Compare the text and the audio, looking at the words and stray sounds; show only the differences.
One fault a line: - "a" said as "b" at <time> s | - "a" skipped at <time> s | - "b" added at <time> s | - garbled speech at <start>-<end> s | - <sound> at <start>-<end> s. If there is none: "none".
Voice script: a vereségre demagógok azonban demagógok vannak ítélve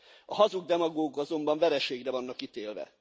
- "vereségre" said as "hazug" at 0.3 s
- "demagógok" said as "vereségre" at 1.6 s